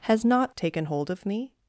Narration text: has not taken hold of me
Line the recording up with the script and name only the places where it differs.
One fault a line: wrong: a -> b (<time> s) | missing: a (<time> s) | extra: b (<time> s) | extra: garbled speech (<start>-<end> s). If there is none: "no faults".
no faults